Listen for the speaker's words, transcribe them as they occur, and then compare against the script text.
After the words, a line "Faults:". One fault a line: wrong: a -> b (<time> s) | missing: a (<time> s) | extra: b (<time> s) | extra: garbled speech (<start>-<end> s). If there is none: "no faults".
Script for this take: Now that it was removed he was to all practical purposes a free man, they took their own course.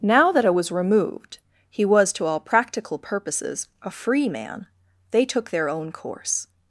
Now that it was removed he was to all practical purposes a free man, they took their own course.
Faults:
no faults